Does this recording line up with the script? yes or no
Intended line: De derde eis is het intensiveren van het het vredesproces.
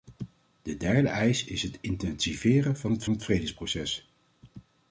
yes